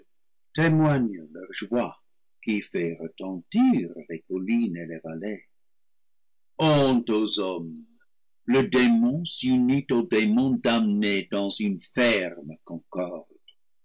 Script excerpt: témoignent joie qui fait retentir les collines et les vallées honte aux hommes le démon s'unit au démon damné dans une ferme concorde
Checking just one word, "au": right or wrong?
right